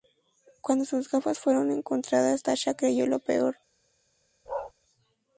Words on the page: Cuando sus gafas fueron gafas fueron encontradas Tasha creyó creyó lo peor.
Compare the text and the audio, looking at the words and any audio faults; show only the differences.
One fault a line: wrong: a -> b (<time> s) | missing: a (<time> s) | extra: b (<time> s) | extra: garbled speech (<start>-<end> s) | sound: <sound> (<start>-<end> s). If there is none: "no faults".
missing: gafas fueron (1.7 s)
missing: creyó (3.1 s)
sound: bark (4.5-4.7 s)